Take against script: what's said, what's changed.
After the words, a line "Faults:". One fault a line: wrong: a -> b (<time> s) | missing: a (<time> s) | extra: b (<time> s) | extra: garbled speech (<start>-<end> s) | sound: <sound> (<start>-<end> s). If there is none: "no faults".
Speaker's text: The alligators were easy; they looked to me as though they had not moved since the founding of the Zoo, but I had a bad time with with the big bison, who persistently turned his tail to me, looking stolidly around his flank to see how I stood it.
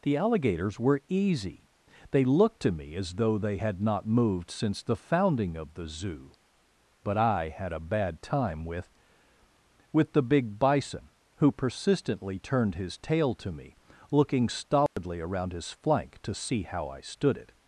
The alligators were easy; they looked to me as though they had not moved since the founding of the Zoo, but I had a bad time with with the big bison, who persistently turned his tail to me, looking stolidly around his flank to see how I stood it.
Faults:
sound: dropout (14.9-15.0 s)